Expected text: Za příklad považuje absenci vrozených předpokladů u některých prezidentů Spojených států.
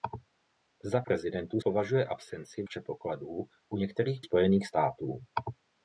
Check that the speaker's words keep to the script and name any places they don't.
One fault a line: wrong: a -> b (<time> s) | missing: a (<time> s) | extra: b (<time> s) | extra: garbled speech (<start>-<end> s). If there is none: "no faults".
wrong: příklad -> prezidentů (1.0 s)
missing: vrozených (2.6 s)
missing: prezidentů (4.2 s)